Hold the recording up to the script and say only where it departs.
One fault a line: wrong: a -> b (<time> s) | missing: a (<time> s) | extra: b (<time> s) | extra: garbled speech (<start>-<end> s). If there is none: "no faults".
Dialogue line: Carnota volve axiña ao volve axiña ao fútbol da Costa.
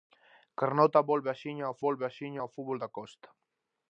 no faults